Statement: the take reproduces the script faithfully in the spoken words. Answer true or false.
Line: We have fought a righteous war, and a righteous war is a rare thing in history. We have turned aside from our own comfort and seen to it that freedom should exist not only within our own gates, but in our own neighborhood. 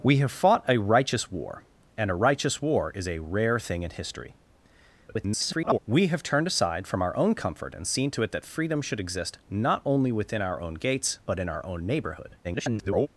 false